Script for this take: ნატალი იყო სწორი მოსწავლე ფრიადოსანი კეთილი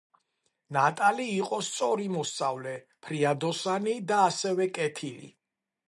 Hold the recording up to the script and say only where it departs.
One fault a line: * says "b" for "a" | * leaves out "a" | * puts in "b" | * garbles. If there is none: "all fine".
* puts in "და ასევე"